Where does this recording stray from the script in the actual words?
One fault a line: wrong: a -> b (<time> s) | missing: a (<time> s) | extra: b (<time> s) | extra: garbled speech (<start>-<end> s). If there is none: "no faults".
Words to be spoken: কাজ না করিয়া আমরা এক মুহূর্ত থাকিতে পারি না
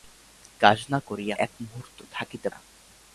missing: আমরা (1.3 s)
missing: পারি (2.5 s)